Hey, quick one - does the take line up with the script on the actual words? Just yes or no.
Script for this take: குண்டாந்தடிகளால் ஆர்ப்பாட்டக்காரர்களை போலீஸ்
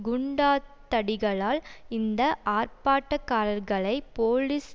no